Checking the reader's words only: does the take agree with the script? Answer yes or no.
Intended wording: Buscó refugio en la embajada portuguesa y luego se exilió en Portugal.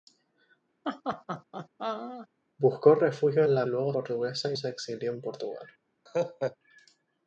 no